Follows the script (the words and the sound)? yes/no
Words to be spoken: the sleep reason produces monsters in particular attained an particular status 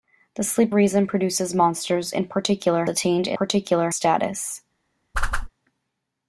no